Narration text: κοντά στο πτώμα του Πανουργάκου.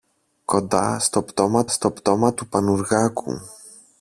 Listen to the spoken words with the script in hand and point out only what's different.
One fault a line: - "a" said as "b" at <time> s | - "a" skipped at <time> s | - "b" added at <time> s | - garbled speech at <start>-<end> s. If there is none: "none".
- "στο πτώμα" added at 1.7 s